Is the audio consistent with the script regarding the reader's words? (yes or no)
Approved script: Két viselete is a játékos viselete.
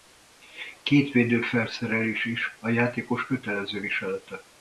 no